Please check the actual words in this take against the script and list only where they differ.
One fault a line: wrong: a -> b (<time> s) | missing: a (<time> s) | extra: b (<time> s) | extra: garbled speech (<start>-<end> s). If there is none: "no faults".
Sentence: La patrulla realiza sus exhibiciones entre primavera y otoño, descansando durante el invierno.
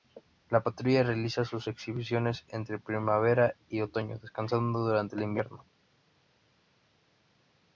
no faults